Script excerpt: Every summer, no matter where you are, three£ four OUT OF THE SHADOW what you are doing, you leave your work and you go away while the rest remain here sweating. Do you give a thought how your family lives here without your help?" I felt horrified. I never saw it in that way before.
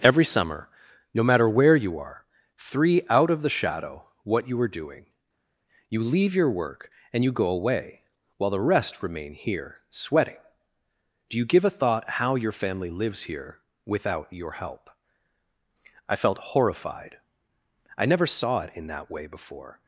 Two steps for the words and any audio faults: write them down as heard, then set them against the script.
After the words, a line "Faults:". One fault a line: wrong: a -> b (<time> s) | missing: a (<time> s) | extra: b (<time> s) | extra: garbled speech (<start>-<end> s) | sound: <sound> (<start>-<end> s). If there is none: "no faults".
Every summer, no matter where you are, three£ OUT OF THE SHADOW what you are doing, you leave your work and you go away while the rest remain here sweating. Do you give a thought how your family lives here without your help?" I felt horrified. I never saw it in that way before.
Faults:
missing: four (3.0 s)